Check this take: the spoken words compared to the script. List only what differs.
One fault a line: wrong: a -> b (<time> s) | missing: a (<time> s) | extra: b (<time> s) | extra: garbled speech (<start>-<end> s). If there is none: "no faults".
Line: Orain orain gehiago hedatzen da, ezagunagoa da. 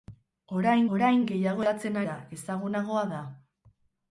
no faults